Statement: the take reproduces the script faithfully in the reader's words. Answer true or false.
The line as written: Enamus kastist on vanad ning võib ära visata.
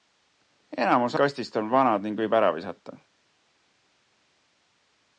true